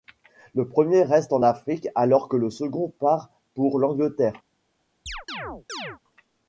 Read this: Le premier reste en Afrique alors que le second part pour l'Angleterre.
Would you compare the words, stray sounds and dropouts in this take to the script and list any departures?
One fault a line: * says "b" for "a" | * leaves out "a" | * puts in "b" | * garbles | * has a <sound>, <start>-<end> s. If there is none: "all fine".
* has a chirp, 5.1-6.0 s